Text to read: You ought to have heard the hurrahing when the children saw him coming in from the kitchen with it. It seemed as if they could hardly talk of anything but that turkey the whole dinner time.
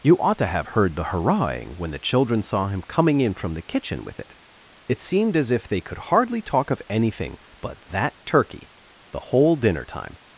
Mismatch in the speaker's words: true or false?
false